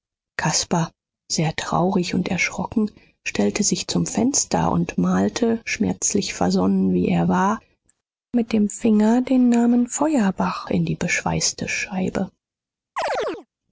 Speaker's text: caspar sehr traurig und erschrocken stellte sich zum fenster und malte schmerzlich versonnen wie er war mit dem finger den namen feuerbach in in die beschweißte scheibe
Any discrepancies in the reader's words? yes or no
yes